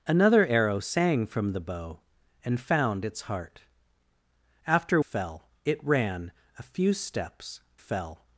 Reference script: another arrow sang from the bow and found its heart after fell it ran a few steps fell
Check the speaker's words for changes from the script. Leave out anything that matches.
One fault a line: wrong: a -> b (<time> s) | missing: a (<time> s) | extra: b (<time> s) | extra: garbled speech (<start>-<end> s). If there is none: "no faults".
no faults